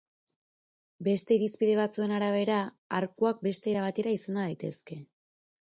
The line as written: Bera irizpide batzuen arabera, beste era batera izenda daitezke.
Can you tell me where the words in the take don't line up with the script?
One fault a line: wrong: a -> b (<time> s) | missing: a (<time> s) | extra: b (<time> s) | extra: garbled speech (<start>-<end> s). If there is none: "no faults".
wrong: Bera -> Beste (1.1 s)
extra: arkuak (3.0 s)